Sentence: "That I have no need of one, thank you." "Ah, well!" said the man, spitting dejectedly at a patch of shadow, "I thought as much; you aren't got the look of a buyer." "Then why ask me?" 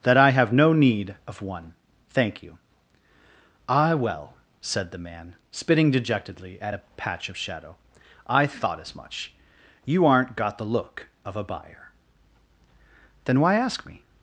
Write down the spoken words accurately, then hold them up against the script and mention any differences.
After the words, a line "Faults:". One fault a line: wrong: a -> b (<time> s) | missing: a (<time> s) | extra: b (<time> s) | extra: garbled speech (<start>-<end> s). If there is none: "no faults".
"That I have no need of one, thank you." "Ah, well!" said the man, spitting dejectedly at a patch of shadow, "I thought as much; you aren't got the look of a buyer." "Then why ask me?"
Faults:
no faults